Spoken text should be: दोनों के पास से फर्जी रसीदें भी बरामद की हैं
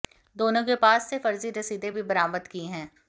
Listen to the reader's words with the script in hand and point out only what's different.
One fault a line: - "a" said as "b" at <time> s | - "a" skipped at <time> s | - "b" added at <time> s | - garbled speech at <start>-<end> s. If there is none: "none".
none